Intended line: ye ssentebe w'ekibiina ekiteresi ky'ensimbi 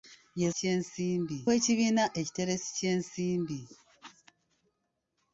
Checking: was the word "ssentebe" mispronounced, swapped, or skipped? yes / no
yes